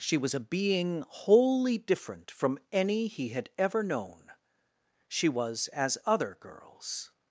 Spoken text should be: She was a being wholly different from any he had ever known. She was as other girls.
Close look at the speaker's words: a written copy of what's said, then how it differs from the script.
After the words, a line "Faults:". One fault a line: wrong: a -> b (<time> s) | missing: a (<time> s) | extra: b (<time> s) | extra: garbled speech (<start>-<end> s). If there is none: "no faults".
She was a being wholly different from any he had ever known. She was as other girls.
Faults:
no faults